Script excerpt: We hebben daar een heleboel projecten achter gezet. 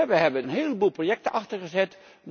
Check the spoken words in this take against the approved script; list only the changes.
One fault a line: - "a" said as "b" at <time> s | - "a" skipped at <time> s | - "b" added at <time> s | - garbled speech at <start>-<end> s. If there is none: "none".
- "daar" skipped at 0.4 s